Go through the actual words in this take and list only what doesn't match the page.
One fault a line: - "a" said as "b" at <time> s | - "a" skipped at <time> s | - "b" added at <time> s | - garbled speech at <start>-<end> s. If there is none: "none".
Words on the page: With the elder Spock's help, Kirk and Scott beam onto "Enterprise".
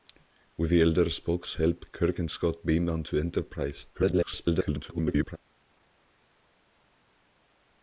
- garbled speech at 3.9-5.4 s